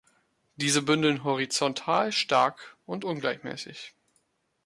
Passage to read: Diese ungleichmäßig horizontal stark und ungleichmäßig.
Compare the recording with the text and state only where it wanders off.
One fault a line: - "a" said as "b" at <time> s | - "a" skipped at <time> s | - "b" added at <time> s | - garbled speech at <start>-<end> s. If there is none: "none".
- "ungleichmäßig" said as "bündeln" at 0.8 s